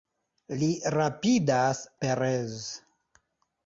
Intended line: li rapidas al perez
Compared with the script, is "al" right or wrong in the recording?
wrong